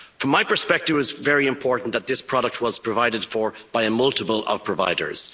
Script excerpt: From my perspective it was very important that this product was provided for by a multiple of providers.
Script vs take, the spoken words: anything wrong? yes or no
no